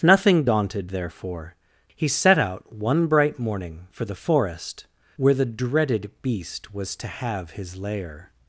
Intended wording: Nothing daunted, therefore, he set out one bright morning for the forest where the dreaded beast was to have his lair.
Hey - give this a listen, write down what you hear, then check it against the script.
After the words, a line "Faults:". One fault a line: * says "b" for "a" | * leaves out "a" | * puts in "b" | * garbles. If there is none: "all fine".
Nothing daunted, therefore, he set out one bright morning for the forest where the dreaded beast was to have his lair.
Faults:
all fine